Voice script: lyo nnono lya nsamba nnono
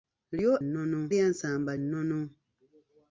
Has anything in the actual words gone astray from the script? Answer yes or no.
no